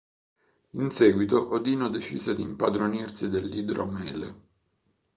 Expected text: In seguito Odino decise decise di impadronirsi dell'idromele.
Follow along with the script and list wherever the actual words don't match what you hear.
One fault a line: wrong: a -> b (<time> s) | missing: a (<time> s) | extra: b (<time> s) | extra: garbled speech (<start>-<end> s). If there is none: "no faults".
missing: decise (2.3 s)